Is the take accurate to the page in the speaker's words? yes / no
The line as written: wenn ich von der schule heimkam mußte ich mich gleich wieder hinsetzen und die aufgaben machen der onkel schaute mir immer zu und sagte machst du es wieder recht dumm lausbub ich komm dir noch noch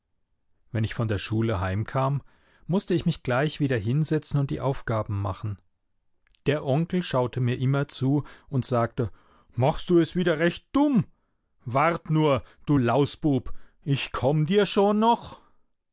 no